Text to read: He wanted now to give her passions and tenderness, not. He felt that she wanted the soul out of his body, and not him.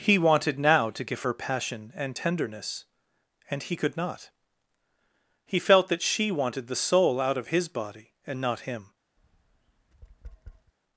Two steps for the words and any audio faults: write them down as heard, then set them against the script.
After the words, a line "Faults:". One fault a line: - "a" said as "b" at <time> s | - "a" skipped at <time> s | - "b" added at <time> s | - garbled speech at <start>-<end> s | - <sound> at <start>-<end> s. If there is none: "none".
He wanted now to give her passion and tenderness, and he could not. He felt that she wanted the soul out of his body, and not him.
Faults:
- "passions" said as "passion" at 1.3 s
- "and he could" added at 3.5 s
- tap at 9.2-10.7 s